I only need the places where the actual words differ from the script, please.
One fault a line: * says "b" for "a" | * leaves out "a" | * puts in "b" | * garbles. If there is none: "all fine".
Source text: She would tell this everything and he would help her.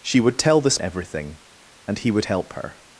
all fine